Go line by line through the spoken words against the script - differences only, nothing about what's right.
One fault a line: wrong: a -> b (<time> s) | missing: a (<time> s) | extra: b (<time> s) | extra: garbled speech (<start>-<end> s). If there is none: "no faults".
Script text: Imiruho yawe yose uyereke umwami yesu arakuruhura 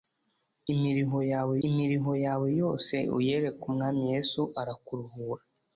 extra: imiruho yawe (1.7 s)